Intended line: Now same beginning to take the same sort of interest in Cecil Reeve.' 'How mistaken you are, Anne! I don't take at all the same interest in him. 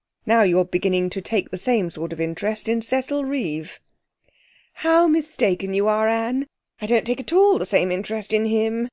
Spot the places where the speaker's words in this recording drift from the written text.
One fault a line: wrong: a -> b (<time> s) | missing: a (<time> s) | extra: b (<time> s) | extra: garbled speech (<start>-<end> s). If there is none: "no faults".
wrong: same -> you're (0.4 s)